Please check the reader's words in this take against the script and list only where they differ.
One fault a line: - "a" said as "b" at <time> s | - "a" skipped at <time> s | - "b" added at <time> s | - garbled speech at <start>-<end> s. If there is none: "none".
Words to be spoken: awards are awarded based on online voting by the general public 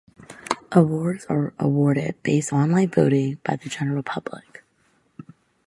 - "on" skipped at 2.5 s